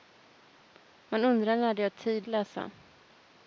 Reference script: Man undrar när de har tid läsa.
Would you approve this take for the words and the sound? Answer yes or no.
yes